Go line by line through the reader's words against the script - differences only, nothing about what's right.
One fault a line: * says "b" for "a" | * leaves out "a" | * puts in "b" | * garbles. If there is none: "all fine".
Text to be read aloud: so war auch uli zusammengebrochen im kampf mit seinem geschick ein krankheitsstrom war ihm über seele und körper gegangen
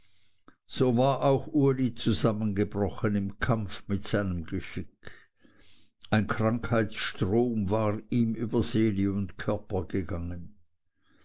all fine